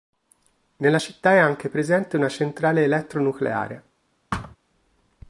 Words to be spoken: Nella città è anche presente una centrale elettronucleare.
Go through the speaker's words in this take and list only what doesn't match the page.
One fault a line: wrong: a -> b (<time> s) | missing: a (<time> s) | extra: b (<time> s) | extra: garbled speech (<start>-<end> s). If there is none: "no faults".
no faults